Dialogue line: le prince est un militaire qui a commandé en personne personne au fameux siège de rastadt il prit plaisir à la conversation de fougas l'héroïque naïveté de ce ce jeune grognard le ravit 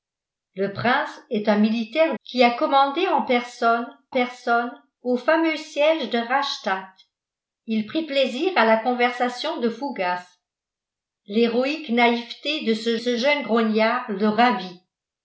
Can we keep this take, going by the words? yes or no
yes